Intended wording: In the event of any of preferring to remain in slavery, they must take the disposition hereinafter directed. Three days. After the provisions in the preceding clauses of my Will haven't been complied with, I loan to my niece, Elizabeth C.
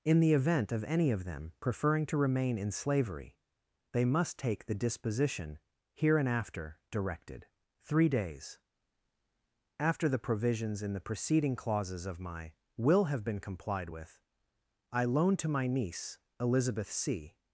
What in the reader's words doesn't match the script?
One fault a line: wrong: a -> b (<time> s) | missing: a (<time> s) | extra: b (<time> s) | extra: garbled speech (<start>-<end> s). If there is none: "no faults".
extra: them (1.2 s)
wrong: haven't -> have (13.1 s)